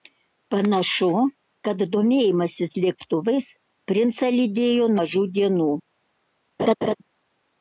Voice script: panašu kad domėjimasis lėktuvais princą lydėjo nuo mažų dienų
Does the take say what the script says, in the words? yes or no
no